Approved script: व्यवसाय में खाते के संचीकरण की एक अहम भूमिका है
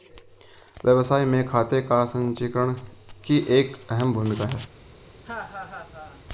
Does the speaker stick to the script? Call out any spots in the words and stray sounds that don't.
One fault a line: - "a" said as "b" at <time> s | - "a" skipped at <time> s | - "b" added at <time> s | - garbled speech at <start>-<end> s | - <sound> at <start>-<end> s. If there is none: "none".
- "के" said as "का" at 1.8 s
- laugh at 5.2-6.2 s